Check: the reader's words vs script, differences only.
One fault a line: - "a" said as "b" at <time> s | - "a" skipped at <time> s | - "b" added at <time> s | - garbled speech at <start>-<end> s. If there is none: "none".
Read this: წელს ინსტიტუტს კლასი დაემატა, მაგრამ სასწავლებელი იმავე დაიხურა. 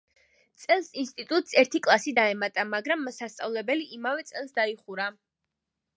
- "ერთი" added at 1.6 s
- "წელს" added at 4.3 s